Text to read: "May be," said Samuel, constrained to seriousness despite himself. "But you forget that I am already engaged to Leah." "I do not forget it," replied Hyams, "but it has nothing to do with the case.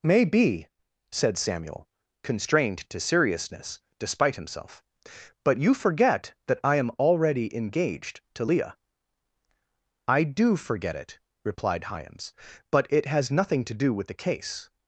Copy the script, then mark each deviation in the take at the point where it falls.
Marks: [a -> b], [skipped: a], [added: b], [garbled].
"May be," said Samuel, constrained to seriousness despite himself. "But you forget that I am already engaged to Leah." "I do [skipped: not] forget it," replied Hyams, "but it has nothing to do with the case.